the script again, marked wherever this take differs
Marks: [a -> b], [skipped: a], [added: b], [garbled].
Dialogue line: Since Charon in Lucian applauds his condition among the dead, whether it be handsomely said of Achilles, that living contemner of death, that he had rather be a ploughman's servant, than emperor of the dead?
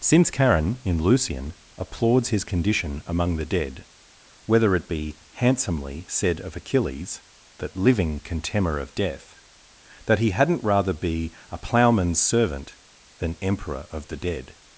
Since Charon in Lucian applauds his condition among the dead, whether it be handsomely said of Achilles, that living contemner of death, that he [had -> hadn't] rather be a ploughman's servant, than emperor of the dead?